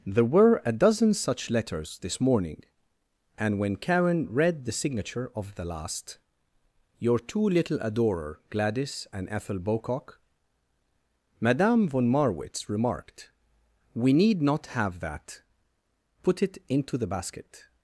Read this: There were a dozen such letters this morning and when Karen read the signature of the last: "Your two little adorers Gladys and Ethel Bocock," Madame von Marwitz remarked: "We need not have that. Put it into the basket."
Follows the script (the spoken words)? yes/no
no